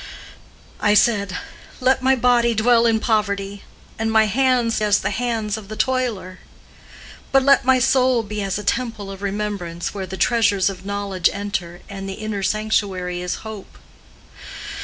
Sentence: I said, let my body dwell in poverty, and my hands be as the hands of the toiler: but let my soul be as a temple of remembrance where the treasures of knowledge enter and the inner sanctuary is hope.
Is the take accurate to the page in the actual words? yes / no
no